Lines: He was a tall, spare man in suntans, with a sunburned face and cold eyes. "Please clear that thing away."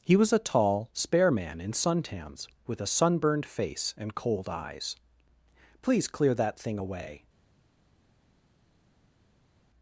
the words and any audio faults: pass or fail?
pass